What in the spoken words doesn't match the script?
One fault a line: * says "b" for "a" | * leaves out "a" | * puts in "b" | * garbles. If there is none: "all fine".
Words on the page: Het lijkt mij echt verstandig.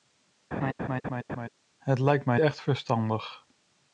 all fine